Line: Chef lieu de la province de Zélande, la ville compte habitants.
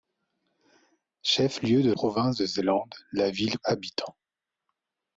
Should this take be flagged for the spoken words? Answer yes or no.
yes